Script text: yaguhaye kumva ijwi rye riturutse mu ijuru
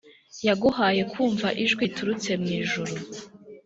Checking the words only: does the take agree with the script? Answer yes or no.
no